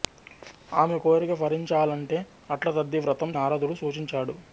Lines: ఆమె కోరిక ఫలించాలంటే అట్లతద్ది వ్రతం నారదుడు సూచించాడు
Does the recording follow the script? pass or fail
pass